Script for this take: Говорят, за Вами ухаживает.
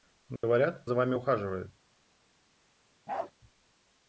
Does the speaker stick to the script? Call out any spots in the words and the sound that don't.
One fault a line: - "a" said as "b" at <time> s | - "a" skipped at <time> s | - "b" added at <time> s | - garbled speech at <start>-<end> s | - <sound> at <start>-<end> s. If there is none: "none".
- dropout at 0.4-0.4 s
- bark at 3.1-3.3 s